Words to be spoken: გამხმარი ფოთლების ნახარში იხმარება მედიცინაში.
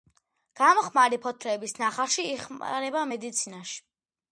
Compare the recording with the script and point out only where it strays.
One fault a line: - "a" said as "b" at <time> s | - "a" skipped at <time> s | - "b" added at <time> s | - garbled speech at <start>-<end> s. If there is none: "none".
none